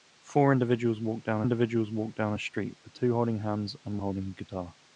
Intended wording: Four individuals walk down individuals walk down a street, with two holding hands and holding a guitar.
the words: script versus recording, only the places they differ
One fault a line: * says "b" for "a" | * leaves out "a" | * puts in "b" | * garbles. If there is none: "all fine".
all fine